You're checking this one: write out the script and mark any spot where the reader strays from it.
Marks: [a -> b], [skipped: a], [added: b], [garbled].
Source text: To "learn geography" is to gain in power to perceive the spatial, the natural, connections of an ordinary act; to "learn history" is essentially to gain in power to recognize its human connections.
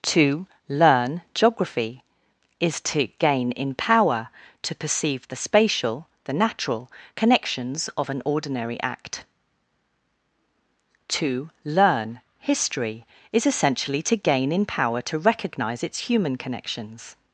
To "learn geography" is to gain in power to perceive the spatial, the natural, connections of an ordinary act; to "learn history" is essentially to gain in power to recognize its human connections.